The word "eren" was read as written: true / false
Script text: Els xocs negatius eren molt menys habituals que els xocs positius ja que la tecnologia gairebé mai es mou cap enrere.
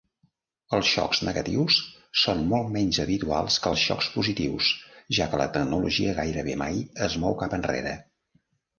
false